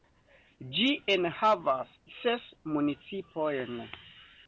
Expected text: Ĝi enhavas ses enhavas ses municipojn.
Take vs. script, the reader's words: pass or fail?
fail